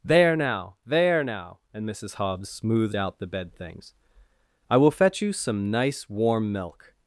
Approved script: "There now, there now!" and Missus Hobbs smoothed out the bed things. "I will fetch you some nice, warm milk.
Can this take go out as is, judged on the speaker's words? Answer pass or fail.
pass